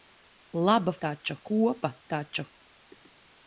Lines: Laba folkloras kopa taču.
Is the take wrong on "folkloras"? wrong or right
wrong